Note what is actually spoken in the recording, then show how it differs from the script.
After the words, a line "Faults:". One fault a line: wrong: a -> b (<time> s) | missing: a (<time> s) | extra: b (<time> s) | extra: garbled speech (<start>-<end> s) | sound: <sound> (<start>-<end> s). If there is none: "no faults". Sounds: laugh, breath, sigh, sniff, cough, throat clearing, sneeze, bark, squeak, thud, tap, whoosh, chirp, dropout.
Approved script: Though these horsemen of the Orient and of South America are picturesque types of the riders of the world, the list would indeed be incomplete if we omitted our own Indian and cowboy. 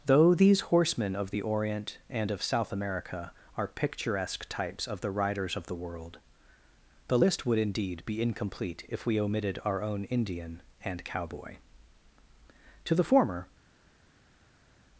Though these horsemen of the Orient and of South America are picturesque types of the riders of the world, the list would indeed be incomplete if we omitted our own Indian and cowboy. To the former
Faults:
extra: To the former (12.8 s)